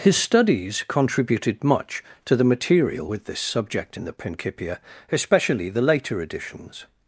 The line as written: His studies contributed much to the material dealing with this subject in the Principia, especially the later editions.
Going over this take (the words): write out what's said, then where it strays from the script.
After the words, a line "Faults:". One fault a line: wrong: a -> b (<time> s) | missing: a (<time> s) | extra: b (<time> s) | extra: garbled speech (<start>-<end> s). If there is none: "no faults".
His studies contributed much to the material with this subject in the Principia, especially the later editions.
Faults:
missing: dealing (3.1 s)